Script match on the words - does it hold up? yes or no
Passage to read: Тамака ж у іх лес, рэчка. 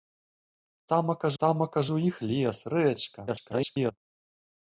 no